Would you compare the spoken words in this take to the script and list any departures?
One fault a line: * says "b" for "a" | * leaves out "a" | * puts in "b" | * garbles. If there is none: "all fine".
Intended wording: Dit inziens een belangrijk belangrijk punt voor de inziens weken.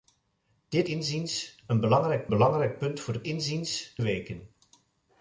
all fine